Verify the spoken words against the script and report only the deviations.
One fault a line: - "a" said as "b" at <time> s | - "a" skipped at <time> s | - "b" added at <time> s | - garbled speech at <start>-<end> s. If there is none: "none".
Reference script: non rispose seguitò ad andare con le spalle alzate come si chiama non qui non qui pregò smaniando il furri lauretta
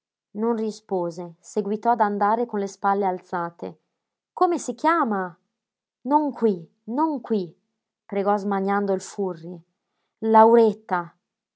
none